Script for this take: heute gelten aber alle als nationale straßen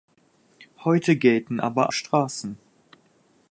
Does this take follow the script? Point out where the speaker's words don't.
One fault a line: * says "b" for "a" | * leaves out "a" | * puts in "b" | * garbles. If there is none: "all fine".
* leaves out "alle als nationale"